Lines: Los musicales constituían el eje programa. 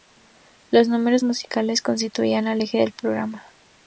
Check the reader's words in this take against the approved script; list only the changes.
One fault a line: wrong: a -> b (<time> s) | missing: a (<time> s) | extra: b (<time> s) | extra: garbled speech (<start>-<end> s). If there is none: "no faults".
extra: números (0.9 s)
extra: del (2.8 s)